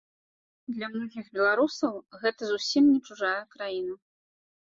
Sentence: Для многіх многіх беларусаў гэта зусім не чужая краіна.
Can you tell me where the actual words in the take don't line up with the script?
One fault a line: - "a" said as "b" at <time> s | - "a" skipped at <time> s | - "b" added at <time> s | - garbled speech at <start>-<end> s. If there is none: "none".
- "многіх" skipped at 1.2 s